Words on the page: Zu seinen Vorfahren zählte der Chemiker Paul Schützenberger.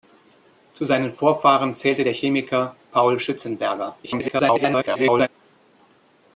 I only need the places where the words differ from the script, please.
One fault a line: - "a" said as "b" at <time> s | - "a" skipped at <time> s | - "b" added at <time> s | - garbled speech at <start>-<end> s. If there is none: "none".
- garbled speech at 4.0-5.3 s